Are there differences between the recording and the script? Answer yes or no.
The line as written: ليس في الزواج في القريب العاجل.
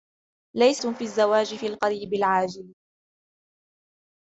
no